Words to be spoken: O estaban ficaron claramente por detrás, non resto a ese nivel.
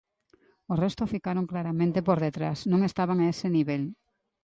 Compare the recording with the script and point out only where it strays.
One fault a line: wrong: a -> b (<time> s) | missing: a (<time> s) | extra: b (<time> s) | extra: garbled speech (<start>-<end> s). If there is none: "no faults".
wrong: estaban -> resto (0.8 s)
wrong: resto -> estaban (2.9 s)